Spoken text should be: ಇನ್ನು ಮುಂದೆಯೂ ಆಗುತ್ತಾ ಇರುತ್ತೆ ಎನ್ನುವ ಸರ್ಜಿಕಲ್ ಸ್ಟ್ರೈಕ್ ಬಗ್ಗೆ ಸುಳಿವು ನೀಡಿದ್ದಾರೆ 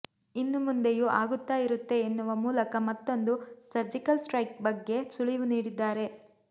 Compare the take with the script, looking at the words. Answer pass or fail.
fail